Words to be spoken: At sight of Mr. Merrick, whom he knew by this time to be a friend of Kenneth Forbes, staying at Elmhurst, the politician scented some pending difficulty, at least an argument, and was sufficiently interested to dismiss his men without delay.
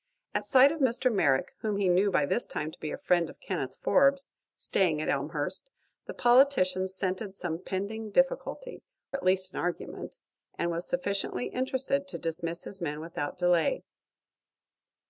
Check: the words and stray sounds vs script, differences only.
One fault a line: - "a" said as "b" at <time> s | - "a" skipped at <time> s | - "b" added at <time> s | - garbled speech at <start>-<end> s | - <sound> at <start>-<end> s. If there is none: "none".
none